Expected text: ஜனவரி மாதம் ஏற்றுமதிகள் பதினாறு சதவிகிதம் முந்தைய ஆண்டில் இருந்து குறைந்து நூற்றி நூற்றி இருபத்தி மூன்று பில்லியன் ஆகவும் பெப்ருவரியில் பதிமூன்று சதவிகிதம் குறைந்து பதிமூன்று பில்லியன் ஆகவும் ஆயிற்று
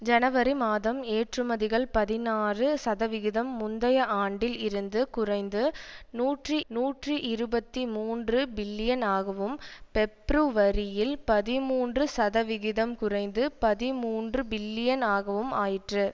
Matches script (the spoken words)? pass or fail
pass